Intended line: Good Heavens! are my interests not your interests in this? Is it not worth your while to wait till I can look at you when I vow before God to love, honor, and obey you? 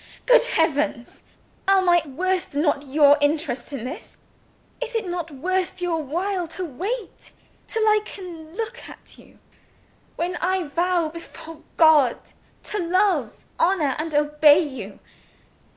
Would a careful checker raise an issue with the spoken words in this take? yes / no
yes